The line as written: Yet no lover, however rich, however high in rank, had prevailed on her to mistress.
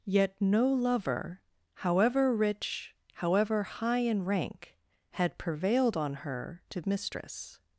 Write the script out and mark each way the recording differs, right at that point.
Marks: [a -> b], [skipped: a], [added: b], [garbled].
Yet no lover, however rich, however high in rank, had prevailed on her to mistress.